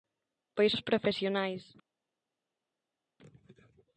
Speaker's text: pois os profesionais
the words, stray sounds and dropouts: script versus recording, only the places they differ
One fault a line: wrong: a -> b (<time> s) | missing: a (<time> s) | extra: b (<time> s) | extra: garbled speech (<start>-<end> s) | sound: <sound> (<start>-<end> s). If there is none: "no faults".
no faults